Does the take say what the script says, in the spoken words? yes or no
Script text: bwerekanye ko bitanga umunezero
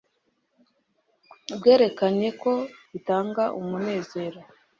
yes